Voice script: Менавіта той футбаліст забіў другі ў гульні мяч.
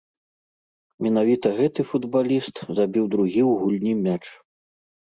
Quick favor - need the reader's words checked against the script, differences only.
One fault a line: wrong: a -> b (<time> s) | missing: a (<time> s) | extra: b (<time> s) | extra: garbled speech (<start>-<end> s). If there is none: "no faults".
wrong: той -> гэты (1.6 s)